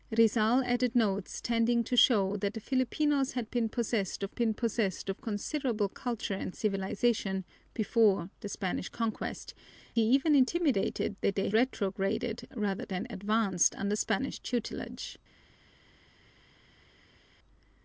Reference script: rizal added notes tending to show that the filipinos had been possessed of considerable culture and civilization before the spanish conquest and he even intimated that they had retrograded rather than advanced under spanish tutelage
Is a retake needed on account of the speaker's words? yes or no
yes